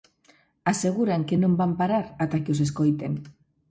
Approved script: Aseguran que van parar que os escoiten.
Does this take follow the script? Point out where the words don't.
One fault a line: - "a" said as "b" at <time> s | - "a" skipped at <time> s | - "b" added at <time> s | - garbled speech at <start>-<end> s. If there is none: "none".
- "non" added at 1.4 s
- "ata" added at 2.2 s